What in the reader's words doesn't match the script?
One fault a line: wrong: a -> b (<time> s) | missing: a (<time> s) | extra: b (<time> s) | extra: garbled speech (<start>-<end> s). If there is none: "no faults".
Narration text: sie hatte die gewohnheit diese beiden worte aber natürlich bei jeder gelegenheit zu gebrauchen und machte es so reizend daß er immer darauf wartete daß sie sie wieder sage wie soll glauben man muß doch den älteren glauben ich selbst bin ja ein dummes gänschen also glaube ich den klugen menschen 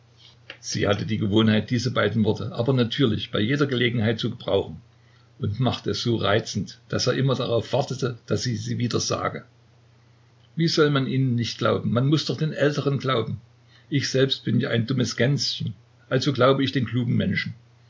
extra: man ihnen nicht (10.9 s)